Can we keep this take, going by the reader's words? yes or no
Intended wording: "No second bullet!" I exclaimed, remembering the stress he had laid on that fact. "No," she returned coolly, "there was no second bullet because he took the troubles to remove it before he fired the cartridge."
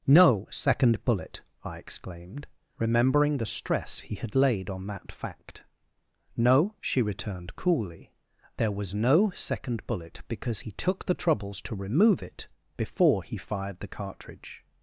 yes